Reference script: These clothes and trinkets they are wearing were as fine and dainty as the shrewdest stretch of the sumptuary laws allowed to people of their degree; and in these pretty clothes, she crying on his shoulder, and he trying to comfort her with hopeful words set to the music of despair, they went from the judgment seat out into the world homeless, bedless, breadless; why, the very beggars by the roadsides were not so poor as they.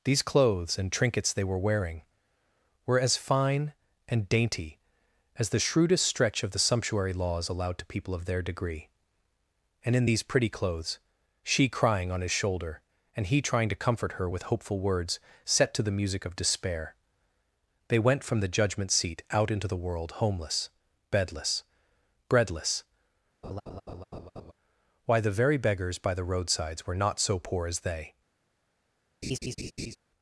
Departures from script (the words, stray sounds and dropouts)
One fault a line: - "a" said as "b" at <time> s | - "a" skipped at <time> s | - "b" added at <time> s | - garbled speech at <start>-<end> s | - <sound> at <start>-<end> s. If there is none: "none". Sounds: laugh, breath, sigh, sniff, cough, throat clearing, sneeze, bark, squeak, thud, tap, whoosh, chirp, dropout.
- "are" said as "were" at 1.4 s
- laugh at 23.4-24.5 s
- laugh at 29.2-30.0 s